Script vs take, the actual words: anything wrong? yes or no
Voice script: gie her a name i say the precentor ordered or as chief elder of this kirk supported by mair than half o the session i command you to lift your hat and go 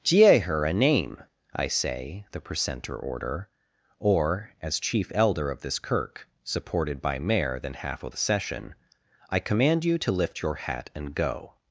yes